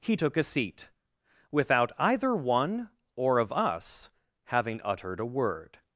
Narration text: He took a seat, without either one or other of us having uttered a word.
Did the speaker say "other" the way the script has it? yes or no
no